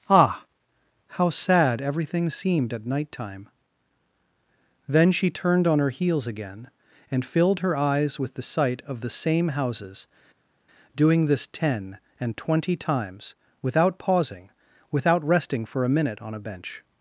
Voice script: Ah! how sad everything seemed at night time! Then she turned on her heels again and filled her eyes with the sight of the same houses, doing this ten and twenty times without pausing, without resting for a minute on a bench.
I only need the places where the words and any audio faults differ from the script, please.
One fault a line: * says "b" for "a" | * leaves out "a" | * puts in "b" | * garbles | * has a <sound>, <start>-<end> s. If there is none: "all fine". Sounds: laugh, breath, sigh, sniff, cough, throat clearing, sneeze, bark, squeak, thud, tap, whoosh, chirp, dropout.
all fine